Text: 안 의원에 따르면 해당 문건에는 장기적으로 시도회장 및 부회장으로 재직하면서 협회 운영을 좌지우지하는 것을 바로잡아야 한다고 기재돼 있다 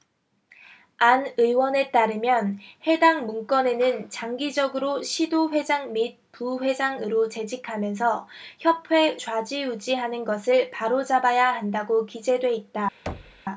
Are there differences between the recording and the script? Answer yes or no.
yes